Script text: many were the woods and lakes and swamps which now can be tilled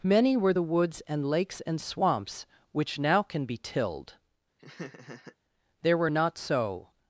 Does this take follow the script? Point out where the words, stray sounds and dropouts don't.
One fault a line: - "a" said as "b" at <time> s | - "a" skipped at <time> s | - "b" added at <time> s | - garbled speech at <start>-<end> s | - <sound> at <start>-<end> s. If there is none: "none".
- laugh at 4.6-5.4 s
- "there were not so" added at 5.8 s